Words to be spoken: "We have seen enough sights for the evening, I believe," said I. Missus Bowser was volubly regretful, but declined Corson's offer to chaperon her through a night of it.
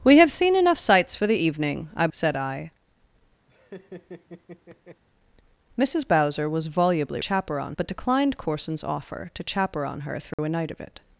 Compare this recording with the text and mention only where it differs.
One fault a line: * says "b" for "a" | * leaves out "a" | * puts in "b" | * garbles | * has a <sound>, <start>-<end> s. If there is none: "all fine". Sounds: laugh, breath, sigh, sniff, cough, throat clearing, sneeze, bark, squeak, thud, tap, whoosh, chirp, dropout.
* leaves out "believe"
* has a laugh, 3.5-5.0 s
* says "chaperon" for "regretful"
* has a dropout, 10.3-10.4 s